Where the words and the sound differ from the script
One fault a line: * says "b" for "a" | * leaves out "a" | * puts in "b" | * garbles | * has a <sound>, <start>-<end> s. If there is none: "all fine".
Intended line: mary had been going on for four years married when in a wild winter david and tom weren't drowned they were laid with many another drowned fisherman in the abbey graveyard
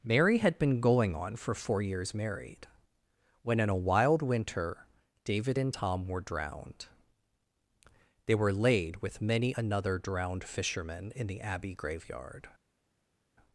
* says "were" for "weren't"